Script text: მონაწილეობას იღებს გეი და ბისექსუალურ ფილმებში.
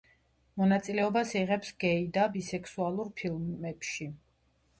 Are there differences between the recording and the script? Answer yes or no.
no